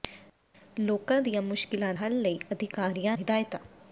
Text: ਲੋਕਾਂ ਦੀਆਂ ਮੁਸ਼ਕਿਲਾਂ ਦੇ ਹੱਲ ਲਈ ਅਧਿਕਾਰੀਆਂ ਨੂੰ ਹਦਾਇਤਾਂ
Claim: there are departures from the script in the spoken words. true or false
true